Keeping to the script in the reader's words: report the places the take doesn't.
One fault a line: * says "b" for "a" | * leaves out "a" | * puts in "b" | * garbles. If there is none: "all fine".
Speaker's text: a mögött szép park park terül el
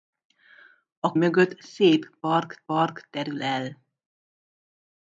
all fine